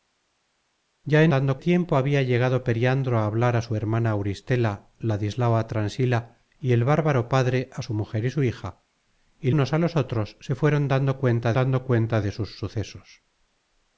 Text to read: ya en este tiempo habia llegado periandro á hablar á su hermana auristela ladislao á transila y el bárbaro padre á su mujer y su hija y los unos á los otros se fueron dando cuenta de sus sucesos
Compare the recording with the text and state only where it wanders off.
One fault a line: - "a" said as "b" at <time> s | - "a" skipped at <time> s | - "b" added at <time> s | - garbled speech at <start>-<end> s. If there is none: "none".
- "este" said as "dando" at 1.3 s
- "los" skipped at 9.5 s
- "dando cuenta" added at 11.5 s